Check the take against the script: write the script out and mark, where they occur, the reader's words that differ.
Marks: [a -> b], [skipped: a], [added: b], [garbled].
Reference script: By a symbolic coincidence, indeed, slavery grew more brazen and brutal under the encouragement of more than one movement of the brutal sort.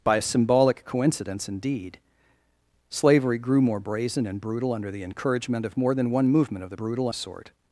By a symbolic coincidence, indeed, slavery grew more brazen and brutal under the encouragement of more than one movement of the brutal sort.